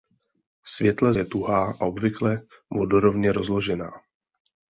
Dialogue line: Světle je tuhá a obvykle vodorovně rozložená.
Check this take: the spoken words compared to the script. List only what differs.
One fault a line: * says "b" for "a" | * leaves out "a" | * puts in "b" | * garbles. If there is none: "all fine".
all fine